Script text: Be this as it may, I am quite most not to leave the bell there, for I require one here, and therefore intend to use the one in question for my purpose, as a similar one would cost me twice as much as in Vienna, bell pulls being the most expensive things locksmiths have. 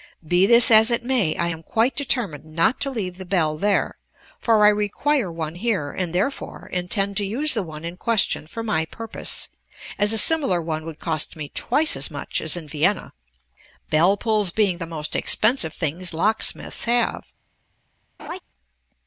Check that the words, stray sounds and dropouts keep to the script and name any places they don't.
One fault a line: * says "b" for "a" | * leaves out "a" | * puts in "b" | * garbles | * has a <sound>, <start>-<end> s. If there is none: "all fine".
* says "determined" for "most"
* has a laugh, 18.2-18.4 s